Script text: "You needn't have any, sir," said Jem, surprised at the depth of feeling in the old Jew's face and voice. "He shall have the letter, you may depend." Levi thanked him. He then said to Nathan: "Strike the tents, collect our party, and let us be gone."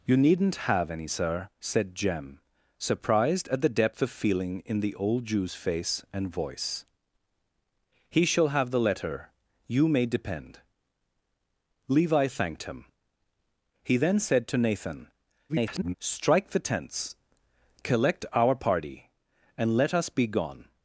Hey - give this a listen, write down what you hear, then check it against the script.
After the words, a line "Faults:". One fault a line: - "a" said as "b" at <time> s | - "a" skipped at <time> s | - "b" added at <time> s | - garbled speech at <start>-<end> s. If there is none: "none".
"You needn't have any, sir," said Jem, surprised at the depth of feeling in the old Jew's face and voice. "He shall have the letter, you may depend." Levi thanked him. He then said to Nathan: [garbled] "Strike the tents, collect our party, and let us be gone."
Faults:
- garbled speech at 15.5-15.9 s